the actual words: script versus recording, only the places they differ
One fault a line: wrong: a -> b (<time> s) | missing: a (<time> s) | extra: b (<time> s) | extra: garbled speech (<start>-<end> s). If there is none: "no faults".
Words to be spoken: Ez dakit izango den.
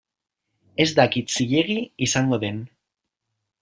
extra: zilegi (1.4 s)